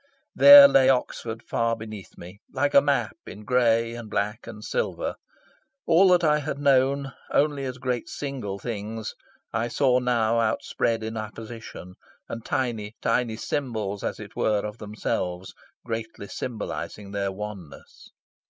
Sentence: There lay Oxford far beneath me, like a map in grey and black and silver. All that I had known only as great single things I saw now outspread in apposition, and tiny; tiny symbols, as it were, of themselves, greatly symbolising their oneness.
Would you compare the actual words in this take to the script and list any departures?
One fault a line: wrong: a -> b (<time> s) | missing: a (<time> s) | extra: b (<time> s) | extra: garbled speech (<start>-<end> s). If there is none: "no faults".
no faults